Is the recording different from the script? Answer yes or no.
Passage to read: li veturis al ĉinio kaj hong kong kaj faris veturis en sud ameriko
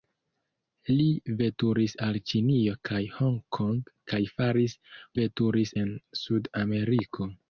no